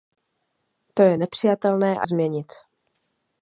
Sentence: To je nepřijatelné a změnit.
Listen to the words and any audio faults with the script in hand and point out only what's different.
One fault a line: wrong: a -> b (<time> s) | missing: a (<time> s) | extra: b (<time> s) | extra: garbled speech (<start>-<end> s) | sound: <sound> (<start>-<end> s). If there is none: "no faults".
no faults